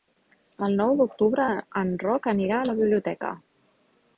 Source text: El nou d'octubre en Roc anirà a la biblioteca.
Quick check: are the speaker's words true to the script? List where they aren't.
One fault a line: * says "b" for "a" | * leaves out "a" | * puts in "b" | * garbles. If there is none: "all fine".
all fine